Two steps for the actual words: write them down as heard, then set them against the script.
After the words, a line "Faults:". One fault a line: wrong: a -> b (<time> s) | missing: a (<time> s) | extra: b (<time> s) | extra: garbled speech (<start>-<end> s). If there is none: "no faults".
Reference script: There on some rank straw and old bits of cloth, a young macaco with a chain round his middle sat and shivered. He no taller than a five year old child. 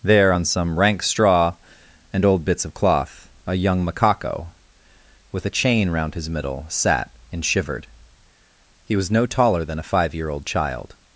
There on some rank straw and old bits of cloth, a young macaco with a chain round his middle sat and shivered. He was no taller than a five year old child.
Faults:
extra: was (8.9 s)